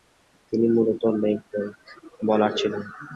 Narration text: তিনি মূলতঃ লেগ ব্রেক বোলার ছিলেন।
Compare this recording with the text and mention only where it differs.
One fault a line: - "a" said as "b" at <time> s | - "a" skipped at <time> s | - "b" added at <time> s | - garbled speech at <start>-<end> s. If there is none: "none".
none